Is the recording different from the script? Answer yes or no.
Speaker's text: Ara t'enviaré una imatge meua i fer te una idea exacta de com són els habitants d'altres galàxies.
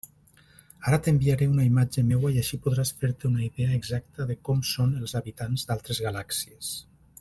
yes